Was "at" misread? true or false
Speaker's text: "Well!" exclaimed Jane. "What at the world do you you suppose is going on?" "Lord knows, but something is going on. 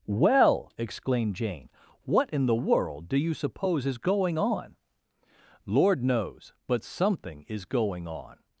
true